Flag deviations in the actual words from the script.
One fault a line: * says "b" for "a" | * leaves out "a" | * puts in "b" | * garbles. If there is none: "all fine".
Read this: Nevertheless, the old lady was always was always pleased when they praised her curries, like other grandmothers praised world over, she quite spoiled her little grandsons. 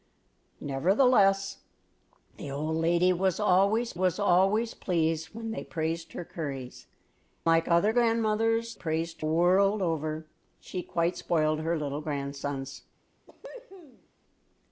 all fine